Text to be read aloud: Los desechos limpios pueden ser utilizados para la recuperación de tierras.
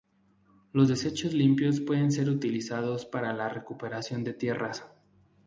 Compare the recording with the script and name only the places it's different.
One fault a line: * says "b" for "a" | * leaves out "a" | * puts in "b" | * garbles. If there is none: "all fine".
all fine